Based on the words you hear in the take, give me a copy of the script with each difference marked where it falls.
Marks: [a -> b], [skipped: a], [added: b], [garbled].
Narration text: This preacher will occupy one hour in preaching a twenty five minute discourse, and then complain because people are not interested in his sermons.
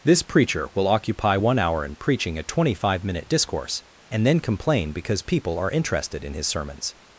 This preacher will occupy one hour in preaching a twenty five minute discourse, and then complain because people are [skipped: not] interested in his sermons.